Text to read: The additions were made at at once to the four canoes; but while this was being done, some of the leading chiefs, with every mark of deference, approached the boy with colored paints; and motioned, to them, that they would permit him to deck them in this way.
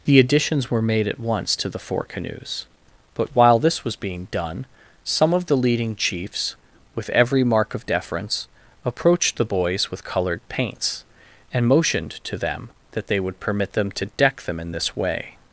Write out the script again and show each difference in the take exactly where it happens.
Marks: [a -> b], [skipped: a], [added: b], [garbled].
The additions were made at [skipped: at] once to the four canoes; but while this was being done, some of the leading chiefs, with every mark of deference, approached the [boy -> boys] with colored paints; and motioned, to them, that they would permit [him -> them] to deck them in this way.